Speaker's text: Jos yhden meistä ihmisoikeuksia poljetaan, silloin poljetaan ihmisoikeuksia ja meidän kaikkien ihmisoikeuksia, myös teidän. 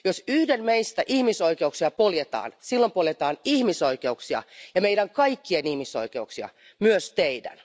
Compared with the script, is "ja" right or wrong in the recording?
right